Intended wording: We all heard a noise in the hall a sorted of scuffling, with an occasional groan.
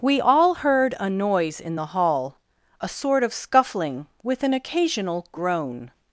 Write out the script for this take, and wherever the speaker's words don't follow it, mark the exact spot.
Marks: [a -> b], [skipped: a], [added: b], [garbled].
We all heard a noise in the hall a [sorted -> sort] of scuffling, with an occasional groan.